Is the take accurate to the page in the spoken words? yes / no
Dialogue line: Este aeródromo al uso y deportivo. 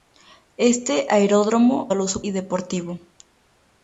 yes